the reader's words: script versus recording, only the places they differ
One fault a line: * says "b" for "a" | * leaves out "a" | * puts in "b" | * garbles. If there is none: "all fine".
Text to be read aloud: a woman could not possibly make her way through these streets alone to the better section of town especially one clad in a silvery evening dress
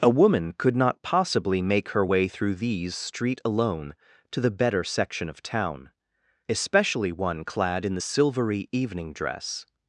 * says "street" for "streets"
* says "the" for "a"